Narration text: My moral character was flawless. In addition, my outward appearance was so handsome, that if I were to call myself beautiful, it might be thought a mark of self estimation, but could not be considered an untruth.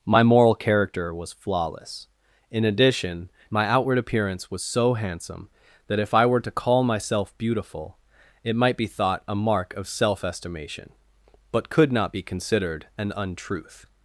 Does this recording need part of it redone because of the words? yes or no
no